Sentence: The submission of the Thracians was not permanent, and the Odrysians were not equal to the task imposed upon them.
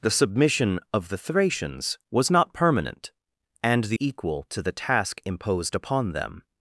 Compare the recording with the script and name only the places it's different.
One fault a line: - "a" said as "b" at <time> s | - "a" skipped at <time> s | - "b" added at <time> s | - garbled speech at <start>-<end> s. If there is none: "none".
- "Odrysians were not" skipped at 4.0 s